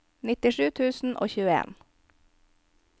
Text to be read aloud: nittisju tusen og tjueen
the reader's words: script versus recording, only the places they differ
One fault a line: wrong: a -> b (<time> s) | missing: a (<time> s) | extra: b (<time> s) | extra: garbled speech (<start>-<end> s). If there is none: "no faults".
no faults